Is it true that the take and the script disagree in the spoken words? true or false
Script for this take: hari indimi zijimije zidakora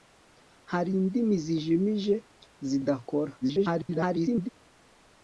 true